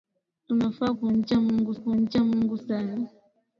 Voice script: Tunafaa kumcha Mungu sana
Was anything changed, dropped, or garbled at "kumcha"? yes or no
no